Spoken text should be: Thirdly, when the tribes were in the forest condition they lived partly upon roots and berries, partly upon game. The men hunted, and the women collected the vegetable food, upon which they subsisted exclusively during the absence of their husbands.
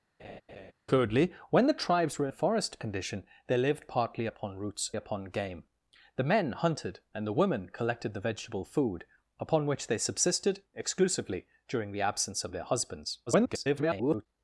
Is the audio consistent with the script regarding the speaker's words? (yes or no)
no